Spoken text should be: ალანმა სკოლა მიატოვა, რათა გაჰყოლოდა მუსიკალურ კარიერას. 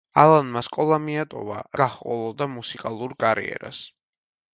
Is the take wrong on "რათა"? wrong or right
wrong